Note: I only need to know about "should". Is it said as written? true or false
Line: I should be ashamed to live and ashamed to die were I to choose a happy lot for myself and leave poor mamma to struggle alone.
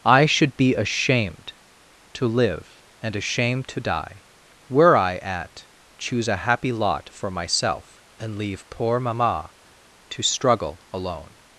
true